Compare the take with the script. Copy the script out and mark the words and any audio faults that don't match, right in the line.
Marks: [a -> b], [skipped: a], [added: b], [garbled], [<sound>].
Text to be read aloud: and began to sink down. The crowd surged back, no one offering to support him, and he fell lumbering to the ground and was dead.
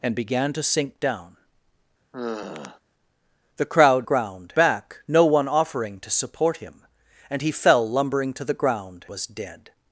and began to sink down. [sigh] The crowd [surged -> ground] back, no one offering to support him, and he fell lumbering to the ground [skipped: and] was dead.